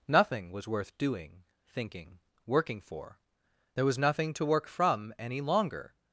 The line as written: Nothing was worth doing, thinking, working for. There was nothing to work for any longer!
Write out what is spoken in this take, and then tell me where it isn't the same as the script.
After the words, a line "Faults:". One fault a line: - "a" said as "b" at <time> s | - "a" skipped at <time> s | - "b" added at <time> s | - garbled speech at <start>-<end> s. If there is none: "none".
Nothing was worth doing, thinking, working for. There was nothing to work from any longer!
Faults:
- "for" said as "from" at 4.7 s